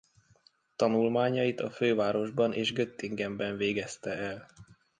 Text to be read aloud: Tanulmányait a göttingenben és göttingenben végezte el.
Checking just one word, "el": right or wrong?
right